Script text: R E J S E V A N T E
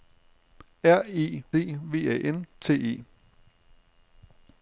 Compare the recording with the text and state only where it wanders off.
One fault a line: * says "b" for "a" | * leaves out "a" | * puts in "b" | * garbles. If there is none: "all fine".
* leaves out "J S"